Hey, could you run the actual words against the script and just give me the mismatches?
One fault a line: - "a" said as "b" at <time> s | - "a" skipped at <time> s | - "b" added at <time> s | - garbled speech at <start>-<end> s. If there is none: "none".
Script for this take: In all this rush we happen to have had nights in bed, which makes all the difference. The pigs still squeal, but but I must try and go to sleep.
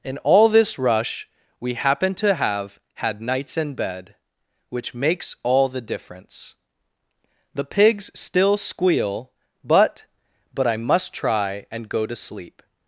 none